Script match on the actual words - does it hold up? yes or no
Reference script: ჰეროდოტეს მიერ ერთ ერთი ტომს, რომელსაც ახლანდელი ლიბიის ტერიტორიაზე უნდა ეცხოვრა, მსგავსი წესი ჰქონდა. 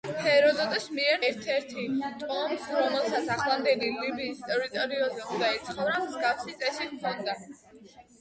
yes